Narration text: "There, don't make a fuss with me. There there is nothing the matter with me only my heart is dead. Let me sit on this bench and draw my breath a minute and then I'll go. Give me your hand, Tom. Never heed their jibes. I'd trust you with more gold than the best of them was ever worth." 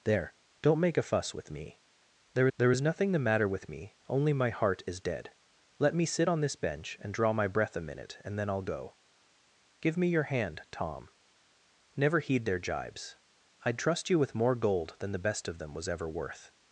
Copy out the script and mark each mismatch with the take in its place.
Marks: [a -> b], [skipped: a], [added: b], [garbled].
"There, don't make a fuss with me. There there is nothing the matter with me only my heart is dead. Let me sit on this bench and draw my breath a minute and then I'll go. Give me your hand, Tom. Never heed their jibes. I'd trust you with more gold than the best of them was ever worth."